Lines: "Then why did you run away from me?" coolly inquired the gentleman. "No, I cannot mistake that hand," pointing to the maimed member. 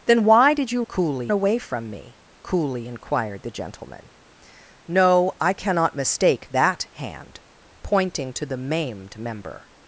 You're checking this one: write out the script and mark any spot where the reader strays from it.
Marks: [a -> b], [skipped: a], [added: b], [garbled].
"Then why did you [run -> coolly] away from me?" coolly inquired the gentleman. "No, I cannot mistake that hand," pointing to the maimed member.